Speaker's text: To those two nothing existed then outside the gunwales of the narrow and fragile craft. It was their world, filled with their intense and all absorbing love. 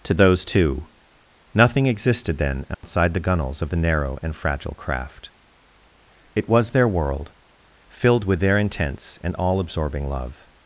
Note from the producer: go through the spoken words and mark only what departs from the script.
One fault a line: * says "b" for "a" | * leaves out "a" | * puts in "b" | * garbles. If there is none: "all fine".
all fine